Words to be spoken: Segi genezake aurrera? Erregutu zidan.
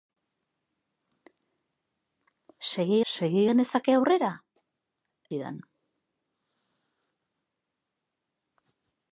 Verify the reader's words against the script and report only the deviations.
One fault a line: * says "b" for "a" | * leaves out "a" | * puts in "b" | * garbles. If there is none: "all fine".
* puts in "segi"
* leaves out "Erregutu"